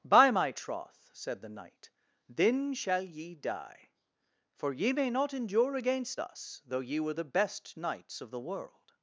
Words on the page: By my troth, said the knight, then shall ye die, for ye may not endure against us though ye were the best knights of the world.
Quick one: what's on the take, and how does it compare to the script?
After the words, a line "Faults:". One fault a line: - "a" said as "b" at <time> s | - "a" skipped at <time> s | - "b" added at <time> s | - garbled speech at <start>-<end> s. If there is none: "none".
By my troth, said the knight, then shall ye die, for ye may not endure against us though ye were the best knights of the world.
Faults:
none